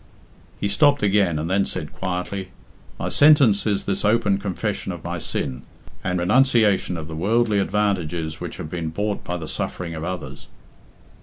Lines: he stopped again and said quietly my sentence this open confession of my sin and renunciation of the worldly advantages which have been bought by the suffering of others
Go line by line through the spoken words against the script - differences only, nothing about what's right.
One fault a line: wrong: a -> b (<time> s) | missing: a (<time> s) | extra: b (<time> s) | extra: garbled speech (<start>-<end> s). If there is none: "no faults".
extra: then (1.5 s)
extra: is (3.7 s)